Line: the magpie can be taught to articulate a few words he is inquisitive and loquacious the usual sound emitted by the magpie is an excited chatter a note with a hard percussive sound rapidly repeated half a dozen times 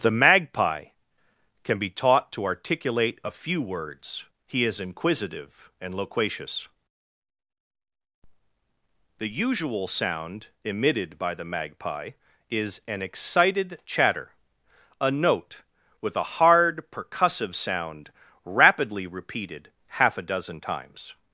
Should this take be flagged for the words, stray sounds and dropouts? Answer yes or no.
no